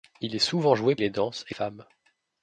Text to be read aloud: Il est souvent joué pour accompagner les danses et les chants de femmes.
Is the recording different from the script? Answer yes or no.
yes